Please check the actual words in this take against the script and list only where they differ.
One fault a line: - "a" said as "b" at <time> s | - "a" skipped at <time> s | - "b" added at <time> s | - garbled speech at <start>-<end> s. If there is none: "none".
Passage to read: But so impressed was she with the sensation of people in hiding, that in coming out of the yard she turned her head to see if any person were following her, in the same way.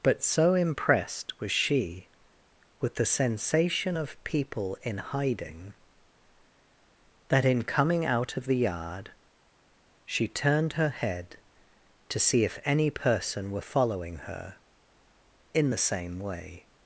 none